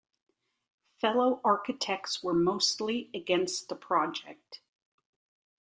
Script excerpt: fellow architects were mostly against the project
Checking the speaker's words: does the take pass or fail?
pass